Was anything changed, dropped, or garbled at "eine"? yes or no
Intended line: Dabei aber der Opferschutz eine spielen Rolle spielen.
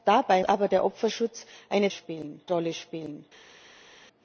no